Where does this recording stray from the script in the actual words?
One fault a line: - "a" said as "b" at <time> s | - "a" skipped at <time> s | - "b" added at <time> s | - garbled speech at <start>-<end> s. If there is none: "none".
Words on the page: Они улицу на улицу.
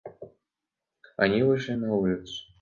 - "улицу" said as "вышли" at 1.4 s